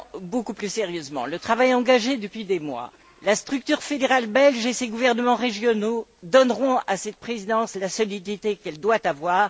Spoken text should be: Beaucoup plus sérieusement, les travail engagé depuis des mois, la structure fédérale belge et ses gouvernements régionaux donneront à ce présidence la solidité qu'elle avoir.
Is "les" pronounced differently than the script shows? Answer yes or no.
yes